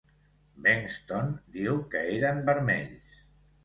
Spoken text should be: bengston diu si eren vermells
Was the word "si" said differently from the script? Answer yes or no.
yes